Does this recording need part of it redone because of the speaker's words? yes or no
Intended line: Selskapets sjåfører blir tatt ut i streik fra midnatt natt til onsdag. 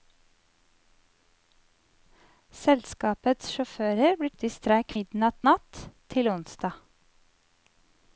yes